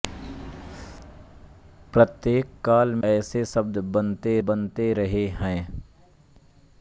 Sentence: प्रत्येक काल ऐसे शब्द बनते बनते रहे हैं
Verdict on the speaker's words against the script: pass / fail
pass